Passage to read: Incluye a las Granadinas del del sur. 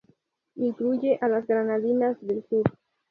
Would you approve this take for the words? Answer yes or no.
no